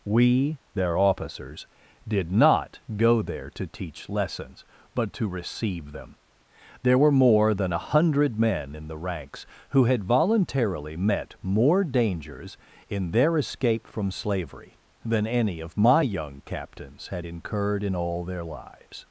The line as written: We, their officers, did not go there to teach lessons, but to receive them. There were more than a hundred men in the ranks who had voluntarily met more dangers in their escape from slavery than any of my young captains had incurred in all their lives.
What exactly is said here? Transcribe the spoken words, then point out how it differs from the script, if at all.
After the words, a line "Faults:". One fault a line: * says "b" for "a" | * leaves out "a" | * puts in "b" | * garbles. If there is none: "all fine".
We, their officers, did not go there to teach lessons, but to receive them. There were more than a hundred men in the ranks who had voluntarily met more dangers in their escape from slavery than any of my young captains had incurred in all their lives.
Faults:
all fine